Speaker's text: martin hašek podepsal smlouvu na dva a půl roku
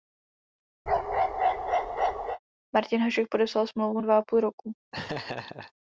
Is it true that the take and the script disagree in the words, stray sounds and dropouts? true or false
true